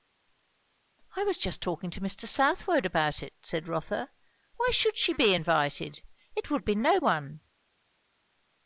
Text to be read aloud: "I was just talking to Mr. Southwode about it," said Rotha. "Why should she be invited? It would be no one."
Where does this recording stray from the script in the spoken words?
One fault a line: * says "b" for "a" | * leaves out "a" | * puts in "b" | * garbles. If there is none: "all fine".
all fine